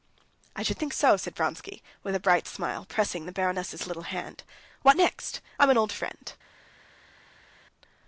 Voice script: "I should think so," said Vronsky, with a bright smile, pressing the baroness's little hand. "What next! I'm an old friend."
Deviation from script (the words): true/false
false